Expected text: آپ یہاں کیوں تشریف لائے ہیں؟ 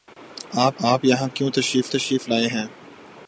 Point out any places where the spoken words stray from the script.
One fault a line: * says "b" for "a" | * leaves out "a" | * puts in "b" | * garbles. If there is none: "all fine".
* puts in "آپ"
* puts in "تشریف"